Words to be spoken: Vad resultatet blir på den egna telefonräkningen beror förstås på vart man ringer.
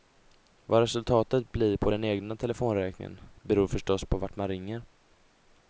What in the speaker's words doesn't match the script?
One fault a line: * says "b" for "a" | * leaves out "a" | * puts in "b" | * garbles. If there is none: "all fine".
all fine